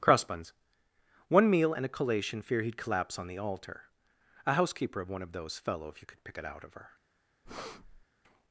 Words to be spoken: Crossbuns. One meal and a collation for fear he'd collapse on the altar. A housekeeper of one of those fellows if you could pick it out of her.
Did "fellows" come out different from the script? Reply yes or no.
yes